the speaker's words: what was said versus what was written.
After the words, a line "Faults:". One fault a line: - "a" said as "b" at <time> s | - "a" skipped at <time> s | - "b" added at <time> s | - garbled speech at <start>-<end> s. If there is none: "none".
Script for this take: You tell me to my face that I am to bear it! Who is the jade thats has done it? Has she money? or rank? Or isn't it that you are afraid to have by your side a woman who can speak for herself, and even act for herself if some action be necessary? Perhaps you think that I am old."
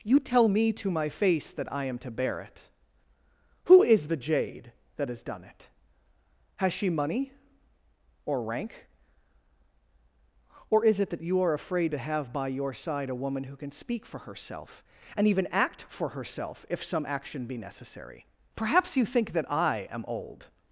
You tell me to my face that I am to bear it! Who is the jade that has done it? Has she money? or rank? Or is it that you are afraid to have by your side a woman who can speak for herself, and even act for herself if some action be necessary? Perhaps you think that I am old."
Faults:
- "thats" said as "that" at 5.0 s
- "isn't" said as "is" at 10.9 s